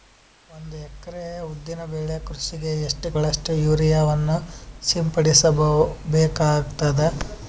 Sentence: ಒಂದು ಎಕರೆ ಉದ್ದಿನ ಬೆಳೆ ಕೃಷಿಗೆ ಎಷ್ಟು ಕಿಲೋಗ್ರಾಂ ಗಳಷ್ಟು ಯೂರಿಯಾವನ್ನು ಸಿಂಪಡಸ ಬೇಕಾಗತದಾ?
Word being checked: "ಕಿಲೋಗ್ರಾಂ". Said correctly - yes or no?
no